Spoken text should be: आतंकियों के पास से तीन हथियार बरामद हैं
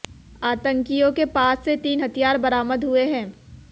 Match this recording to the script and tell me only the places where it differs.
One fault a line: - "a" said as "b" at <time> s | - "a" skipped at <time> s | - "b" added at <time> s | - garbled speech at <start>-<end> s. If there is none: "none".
- "हुए" added at 2.8 s